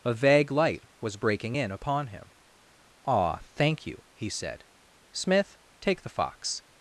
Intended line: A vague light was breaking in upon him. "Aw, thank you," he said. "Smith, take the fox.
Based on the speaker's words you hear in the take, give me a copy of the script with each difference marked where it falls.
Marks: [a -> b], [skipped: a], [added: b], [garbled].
A vague light was breaking in upon him. "Aw, thank you," he said. "Smith, take the fox.